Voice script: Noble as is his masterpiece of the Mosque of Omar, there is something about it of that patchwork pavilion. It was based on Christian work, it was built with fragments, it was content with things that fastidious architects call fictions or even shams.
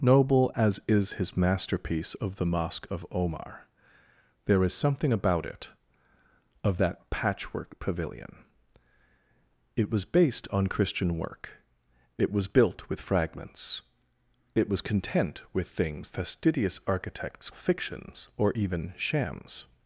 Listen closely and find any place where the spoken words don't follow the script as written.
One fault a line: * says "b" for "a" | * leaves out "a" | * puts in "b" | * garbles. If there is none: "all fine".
* leaves out "that"
* leaves out "call"